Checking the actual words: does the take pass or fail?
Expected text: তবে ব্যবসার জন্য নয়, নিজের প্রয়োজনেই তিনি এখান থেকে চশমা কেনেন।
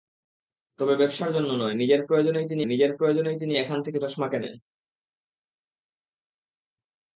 fail